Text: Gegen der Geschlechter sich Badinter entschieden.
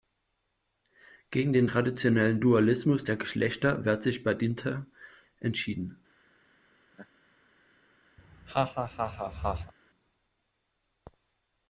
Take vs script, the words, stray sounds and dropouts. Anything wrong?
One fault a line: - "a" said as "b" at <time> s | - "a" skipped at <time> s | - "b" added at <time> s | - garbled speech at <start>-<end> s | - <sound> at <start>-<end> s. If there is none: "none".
- "den traditionellen Dualismus" added at 1.5 s
- "wehrt" added at 3.8 s
- laugh at 6.9-7.1 s
- laugh at 8.2-9.7 s